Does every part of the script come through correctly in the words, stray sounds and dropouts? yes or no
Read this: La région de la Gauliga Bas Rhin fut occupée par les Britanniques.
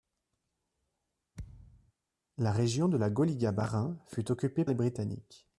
no